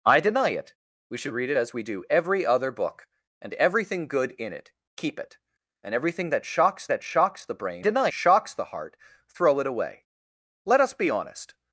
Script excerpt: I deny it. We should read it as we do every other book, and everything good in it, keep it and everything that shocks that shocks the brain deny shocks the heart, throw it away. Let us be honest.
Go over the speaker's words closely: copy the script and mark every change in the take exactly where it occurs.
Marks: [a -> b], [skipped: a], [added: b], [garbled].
I deny it. We should read it as we do every other book, and everything good in it, keep it and everything that shocks that shocks the brain deny shocks the heart, throw it away. Let us be honest.